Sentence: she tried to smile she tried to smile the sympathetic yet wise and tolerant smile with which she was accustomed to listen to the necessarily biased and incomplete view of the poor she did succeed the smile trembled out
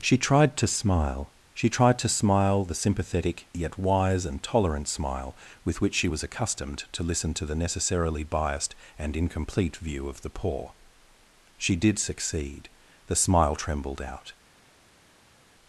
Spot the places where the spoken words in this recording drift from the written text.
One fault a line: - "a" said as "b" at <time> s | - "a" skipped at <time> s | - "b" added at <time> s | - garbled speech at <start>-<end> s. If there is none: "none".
none